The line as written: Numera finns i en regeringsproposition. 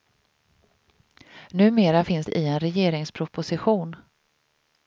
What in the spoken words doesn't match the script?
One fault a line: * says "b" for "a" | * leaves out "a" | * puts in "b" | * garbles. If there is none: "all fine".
all fine